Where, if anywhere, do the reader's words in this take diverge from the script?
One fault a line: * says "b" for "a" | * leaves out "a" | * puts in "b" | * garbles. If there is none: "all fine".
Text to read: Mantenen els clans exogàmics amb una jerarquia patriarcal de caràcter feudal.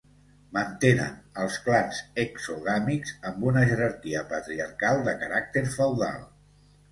all fine